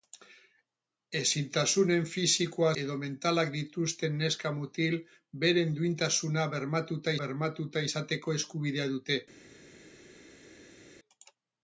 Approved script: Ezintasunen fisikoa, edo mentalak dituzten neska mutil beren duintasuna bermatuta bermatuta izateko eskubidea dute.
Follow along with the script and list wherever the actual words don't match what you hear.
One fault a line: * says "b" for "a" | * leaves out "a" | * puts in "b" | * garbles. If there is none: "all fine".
all fine